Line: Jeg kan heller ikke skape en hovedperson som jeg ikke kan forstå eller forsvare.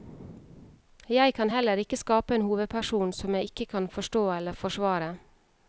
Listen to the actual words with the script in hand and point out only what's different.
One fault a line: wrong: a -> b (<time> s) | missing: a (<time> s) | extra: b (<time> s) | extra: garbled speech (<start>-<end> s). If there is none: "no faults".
no faults